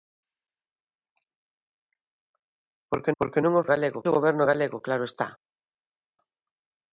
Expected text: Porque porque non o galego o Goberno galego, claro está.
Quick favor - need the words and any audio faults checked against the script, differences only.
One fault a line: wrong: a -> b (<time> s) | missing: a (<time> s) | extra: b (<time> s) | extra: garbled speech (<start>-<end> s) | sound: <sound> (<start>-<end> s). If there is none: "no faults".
no faults